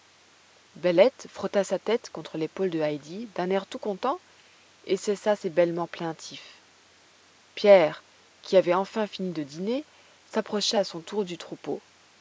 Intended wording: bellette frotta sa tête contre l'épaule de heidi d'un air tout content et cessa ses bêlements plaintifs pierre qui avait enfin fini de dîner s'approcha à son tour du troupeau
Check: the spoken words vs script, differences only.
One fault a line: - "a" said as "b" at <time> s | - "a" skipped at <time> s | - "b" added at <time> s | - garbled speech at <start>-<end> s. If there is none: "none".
none